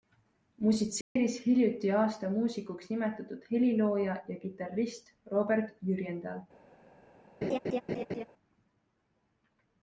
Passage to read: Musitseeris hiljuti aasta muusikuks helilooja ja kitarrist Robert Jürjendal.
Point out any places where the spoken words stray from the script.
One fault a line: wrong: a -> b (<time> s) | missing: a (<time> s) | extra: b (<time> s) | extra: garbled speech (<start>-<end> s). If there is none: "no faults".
extra: nimetatud (2.9 s)